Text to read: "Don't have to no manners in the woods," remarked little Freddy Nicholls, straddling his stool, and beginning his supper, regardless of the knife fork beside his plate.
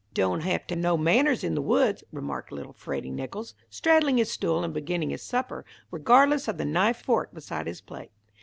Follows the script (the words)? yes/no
yes